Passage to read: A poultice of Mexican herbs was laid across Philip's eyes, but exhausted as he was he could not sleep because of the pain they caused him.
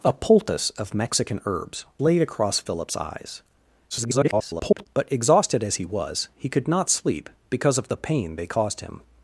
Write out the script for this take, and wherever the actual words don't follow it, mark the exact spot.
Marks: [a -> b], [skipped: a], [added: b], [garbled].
A poultice of Mexican herbs [skipped: was] laid across Philip's eyes, [garbled] but exhausted as he was he could not sleep because of the pain they caused him.